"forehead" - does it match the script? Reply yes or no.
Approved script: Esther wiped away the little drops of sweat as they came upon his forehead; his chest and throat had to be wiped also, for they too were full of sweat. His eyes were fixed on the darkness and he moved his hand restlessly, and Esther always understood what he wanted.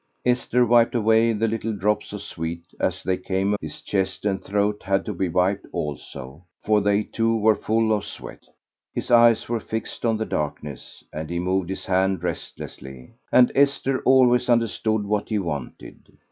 no